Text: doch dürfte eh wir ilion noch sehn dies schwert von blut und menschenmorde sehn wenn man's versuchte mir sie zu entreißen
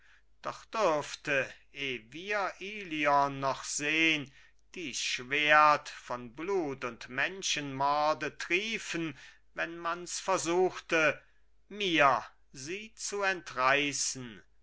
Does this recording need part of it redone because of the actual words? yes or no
yes